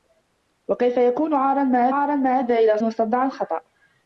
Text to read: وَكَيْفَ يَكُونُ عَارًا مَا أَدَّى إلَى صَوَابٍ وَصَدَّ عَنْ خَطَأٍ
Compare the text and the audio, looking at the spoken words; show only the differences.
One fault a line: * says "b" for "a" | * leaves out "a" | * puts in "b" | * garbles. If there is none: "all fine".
* puts in "عَارًا مَا"
* leaves out "صَوَابٍ"